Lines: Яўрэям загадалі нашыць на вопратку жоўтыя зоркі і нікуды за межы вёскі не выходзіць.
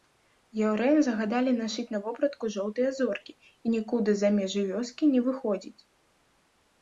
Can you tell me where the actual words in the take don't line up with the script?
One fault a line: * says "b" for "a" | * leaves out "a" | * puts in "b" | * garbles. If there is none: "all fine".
all fine